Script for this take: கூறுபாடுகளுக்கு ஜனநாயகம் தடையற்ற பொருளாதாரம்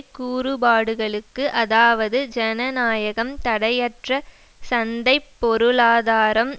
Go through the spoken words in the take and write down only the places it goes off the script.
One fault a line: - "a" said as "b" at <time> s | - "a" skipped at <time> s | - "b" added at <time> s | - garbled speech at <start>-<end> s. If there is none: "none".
- "அதாவது" added at 1.6 s
- "சந்தை" added at 4.6 s